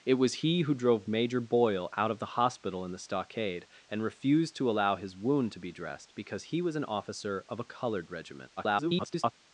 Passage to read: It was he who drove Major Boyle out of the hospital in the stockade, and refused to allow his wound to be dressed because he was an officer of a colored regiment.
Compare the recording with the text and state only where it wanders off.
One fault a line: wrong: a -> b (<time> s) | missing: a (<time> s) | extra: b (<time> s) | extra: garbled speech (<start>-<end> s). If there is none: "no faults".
extra: garbled speech (8.6-9.3 s)